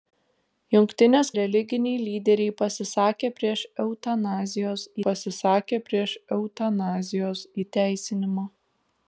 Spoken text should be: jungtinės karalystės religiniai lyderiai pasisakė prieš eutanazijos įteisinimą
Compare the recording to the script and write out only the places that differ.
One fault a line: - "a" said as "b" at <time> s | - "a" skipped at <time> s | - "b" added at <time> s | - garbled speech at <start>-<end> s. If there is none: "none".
- "karalystės" skipped at 1.3 s
- "pasisakė prieš eutanazijos" added at 5.1 s